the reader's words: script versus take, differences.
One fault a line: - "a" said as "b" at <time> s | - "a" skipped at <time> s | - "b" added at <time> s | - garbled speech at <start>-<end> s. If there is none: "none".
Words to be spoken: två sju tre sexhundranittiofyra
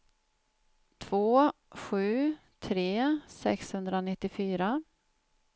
none